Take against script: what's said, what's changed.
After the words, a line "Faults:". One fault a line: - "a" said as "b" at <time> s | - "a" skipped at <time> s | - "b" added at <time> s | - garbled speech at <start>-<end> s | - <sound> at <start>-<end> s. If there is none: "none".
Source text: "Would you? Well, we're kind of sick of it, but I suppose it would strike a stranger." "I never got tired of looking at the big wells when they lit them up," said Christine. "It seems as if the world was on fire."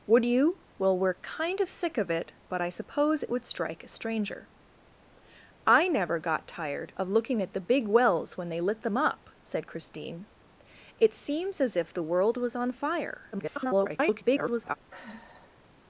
"Would you? Well, we're kind of sick of it, but I suppose it would strike a stranger." "I never got tired of looking at the big wells when they lit them up," said Christine. "It seems as if the world was on fire." [garbled]
Faults:
- garbled speech at 13.3-14.8 s
- sigh at 14.9-15.7 s